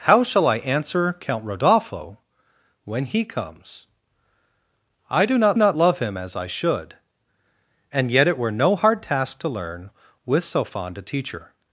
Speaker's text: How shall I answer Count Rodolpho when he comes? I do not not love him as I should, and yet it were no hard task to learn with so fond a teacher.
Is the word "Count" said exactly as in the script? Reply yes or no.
yes